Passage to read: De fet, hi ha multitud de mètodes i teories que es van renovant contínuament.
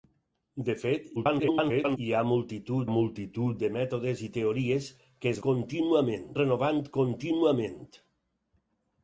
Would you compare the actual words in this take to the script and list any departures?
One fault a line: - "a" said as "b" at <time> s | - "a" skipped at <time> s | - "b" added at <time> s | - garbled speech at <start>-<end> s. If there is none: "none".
- garbled speech at 1.1-2.0 s
- "multitud" added at 2.9 s
- "van" said as "contínuament" at 5.5 s